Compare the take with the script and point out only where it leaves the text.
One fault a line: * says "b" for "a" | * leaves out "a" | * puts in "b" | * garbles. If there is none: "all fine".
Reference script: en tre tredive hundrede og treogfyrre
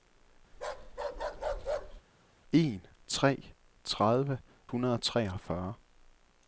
all fine